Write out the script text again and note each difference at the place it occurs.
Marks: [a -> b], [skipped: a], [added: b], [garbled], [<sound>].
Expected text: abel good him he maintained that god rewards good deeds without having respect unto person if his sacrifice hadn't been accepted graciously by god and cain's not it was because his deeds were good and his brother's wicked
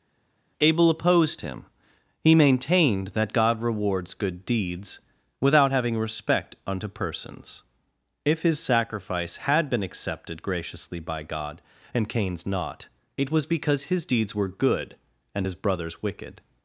abel [good -> opposed] him he maintained that god rewards good deeds without having respect unto [person -> persons] if his sacrifice [hadn't -> had] been accepted graciously by god and cain's not it was because his deeds were good and his brother's wicked